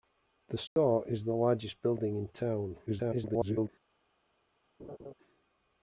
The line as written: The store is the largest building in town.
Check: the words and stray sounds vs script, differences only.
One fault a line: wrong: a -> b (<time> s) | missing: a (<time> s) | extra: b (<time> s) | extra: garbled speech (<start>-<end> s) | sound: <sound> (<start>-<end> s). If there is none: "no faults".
sound: dropout (0.7-0.8 s)
extra: garbled speech (2.9-3.7 s)
sound: laugh (4.8-5.1 s)